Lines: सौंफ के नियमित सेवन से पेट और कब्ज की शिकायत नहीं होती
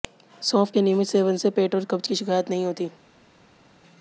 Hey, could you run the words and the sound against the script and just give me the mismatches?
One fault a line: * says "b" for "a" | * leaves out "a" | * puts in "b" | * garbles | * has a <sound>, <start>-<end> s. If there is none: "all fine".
all fine